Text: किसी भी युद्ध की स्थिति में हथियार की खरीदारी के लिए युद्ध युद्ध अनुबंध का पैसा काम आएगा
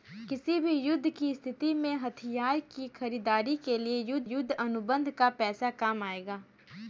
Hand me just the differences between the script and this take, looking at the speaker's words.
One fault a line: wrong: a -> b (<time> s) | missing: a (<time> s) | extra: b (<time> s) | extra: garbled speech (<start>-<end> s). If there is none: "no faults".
no faults